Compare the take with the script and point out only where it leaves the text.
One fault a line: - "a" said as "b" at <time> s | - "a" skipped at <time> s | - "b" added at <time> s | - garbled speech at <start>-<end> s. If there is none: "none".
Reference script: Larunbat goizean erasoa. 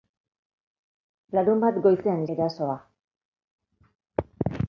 none